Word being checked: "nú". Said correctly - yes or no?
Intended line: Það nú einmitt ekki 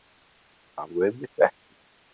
yes